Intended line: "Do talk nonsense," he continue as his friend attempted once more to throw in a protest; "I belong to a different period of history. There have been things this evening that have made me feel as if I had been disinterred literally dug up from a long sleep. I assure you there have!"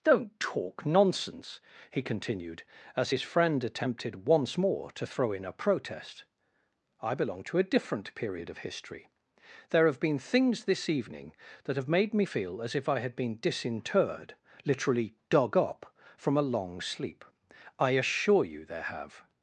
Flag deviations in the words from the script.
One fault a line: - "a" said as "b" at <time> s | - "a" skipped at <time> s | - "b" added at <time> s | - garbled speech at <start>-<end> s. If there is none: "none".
- "Do" said as "Don't" at 0.0 s
- "continue" said as "continued" at 2.0 s